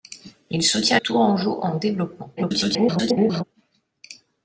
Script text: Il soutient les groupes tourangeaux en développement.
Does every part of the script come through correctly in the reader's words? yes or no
no